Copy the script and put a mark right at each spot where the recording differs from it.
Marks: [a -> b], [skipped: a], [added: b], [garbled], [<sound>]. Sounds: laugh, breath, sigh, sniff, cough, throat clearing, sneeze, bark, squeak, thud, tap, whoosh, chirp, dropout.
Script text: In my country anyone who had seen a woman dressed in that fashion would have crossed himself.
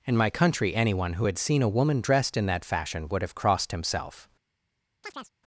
In my country anyone who had seen a woman dressed in that fashion would have crossed himself. [chirp]